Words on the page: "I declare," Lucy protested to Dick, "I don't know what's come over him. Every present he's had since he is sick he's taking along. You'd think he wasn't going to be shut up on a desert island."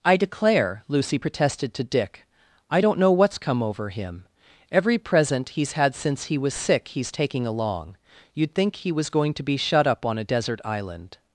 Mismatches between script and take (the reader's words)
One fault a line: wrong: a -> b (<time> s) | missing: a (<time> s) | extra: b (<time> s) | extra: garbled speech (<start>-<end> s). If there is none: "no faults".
wrong: is -> was (6.4 s)
wrong: wasn't -> was (8.9 s)